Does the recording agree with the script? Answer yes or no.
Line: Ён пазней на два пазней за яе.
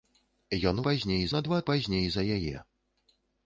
yes